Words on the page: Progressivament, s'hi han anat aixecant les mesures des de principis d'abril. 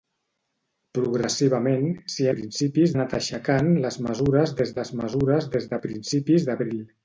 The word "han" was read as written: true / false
false